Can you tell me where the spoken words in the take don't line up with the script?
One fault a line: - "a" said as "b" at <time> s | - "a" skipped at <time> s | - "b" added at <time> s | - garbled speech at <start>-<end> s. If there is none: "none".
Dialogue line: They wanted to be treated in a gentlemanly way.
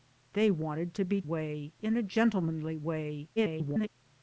- "treated" said as "way" at 1.2 s
- garbled speech at 3.4-3.9 s